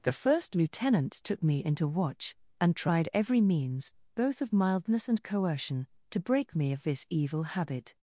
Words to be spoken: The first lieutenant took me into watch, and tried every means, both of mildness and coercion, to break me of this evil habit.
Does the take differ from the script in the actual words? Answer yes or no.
no